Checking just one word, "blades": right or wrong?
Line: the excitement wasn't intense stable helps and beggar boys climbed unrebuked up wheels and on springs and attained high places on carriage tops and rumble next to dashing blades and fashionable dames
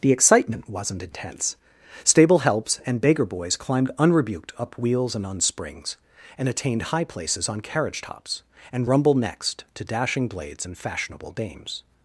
right